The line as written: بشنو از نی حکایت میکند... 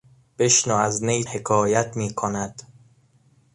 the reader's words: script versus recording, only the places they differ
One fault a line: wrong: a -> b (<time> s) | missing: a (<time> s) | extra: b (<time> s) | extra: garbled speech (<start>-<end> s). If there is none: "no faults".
no faults